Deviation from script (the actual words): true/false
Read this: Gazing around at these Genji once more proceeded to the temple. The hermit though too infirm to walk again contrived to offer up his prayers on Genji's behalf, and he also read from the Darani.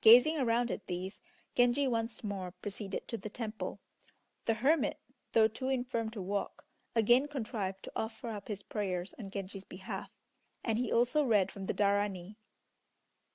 false